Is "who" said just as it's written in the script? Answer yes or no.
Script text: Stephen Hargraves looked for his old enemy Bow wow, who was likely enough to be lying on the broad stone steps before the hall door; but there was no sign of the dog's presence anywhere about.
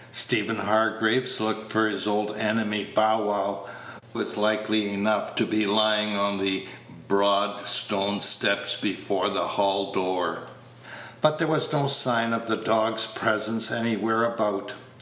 no